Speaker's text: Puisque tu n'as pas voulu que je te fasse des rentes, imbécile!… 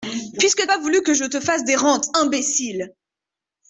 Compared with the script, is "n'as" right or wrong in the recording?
wrong